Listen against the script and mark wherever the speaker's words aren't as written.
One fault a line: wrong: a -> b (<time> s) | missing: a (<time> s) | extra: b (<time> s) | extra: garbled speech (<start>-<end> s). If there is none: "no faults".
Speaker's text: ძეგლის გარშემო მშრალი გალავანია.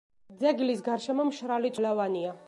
no faults